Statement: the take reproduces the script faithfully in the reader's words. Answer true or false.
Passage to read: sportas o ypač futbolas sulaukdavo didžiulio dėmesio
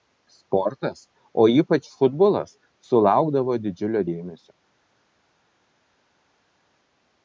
true